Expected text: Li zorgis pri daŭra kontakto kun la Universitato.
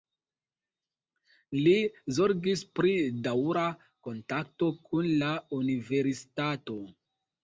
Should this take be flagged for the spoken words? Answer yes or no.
no